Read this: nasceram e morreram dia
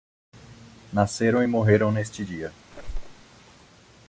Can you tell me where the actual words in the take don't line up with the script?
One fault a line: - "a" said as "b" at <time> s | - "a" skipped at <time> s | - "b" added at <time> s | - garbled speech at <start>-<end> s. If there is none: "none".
- "neste" added at 1.9 s